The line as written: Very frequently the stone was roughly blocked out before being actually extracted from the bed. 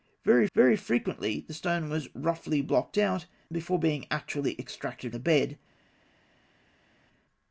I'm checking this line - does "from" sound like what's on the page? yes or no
no